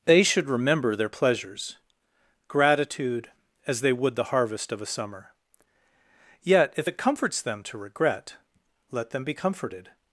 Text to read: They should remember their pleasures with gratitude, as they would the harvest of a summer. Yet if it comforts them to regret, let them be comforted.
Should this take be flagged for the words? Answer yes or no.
yes